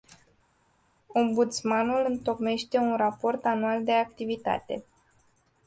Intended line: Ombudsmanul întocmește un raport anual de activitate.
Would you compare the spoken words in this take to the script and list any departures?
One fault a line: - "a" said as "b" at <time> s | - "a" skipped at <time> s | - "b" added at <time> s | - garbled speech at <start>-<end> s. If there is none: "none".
none